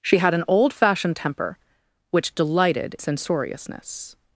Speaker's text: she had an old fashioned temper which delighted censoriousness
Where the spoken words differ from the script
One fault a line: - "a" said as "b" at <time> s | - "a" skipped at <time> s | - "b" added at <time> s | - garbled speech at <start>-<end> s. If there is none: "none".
none